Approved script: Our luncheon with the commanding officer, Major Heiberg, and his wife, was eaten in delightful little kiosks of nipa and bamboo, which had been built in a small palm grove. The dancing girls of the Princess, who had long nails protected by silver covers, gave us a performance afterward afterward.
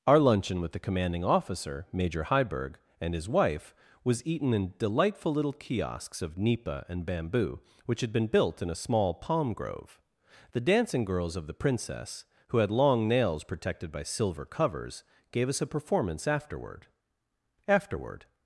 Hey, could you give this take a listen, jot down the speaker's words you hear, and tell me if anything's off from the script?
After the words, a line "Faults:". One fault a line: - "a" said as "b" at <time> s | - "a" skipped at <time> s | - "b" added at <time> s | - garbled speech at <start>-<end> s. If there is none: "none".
Our luncheon with the commanding officer, Major Heiberg, and his wife, was eaten in delightful little kiosks of nipa and bamboo, which had been built in a small palm grove. The dancing girls of the Princess, who had long nails protected by silver covers, gave us a performance afterward afterward.
Faults:
none